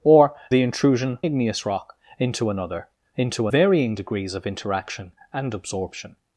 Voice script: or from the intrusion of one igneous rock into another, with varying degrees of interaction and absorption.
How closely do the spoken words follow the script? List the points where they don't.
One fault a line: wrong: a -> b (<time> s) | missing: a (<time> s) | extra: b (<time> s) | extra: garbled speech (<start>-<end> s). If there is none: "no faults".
missing: from (0.3 s)
missing: of one (1.2 s)
wrong: with -> into (3.2 s)